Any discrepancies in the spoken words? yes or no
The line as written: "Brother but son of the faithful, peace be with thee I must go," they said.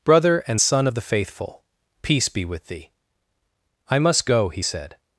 yes